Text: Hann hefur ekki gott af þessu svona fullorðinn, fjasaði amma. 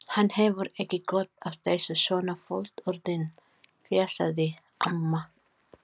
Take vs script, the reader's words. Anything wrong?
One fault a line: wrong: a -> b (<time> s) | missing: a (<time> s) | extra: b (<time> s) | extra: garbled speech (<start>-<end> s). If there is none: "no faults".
no faults